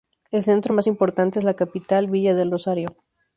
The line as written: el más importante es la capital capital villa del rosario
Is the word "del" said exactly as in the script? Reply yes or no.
yes